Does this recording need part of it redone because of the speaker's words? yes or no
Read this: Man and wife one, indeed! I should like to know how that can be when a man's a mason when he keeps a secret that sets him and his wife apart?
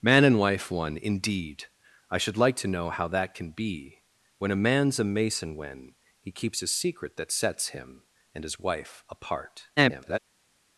yes